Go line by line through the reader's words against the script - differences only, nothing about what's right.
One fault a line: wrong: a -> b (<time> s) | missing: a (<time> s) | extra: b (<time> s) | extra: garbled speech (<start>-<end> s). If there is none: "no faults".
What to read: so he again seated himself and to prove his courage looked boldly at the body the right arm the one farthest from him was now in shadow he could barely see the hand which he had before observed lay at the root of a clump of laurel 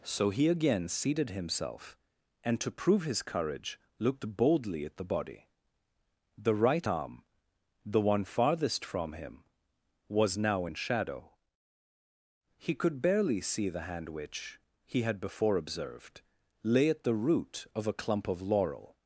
no faults